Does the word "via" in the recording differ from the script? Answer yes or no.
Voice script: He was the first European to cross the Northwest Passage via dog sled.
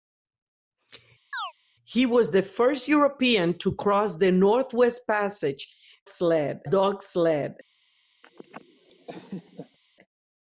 yes